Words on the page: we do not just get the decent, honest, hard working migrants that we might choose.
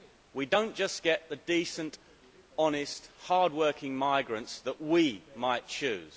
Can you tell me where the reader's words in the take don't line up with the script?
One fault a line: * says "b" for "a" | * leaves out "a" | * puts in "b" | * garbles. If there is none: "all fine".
all fine